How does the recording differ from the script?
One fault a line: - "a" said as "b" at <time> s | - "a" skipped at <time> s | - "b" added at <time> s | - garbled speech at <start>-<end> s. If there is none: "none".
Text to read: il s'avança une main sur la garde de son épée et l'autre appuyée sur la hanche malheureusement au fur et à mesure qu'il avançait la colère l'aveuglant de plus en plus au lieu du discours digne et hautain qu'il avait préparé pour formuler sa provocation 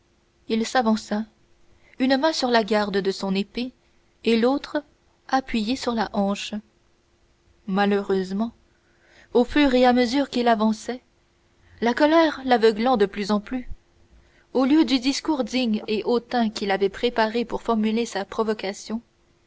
none